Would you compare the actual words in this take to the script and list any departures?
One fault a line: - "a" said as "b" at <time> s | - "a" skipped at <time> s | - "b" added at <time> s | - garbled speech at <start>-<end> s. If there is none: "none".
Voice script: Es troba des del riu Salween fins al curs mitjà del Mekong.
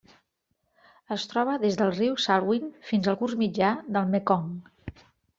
none